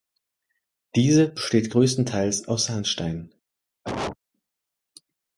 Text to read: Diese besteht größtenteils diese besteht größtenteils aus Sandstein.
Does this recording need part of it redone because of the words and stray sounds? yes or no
yes